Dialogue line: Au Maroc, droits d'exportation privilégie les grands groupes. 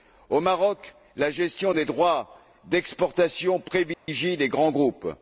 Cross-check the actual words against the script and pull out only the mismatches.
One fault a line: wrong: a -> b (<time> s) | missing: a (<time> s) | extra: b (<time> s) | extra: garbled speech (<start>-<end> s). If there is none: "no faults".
extra: la gestion des (1.1 s)